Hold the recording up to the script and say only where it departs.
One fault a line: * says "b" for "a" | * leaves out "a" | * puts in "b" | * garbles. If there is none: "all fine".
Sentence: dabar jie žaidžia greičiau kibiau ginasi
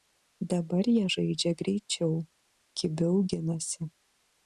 all fine